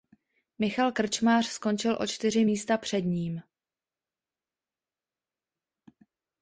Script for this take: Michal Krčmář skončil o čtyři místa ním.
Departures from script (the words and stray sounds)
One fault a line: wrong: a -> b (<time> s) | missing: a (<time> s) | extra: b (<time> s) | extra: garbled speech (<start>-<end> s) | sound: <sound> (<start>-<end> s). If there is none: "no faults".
extra: před (2.8 s)